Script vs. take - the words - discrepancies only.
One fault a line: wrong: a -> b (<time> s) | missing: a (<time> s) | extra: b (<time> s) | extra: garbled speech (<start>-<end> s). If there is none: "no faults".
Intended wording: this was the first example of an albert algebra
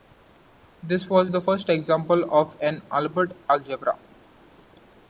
no faults